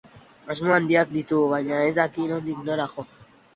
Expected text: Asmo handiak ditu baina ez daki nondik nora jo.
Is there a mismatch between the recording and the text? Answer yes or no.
no